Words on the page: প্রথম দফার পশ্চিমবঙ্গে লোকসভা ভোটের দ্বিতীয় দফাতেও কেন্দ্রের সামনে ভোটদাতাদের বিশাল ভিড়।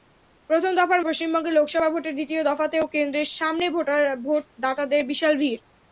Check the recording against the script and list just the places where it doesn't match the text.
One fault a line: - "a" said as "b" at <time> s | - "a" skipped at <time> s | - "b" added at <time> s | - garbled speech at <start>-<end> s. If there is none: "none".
none